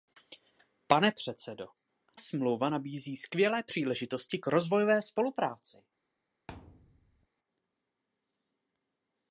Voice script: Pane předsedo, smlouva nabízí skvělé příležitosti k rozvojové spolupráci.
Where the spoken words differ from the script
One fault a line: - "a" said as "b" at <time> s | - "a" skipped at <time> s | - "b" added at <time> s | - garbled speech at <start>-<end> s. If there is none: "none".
none